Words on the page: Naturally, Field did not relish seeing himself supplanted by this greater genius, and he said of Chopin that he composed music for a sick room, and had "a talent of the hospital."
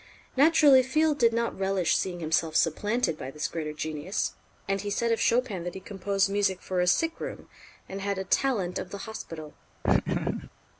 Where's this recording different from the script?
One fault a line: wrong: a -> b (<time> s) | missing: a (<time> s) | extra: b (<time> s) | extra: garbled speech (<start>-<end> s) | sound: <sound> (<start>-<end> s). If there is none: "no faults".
sound: laugh (9.8-10.5 s)